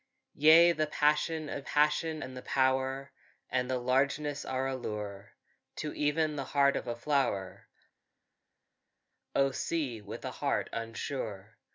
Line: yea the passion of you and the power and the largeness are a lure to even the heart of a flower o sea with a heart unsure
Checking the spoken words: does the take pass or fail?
fail